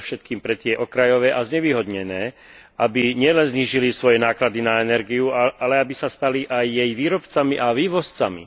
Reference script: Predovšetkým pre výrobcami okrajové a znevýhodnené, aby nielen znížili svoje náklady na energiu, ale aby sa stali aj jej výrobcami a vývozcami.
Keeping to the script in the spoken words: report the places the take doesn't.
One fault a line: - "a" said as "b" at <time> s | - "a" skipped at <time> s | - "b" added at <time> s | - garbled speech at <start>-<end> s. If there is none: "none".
- "výrobcami" said as "tie" at 0.6 s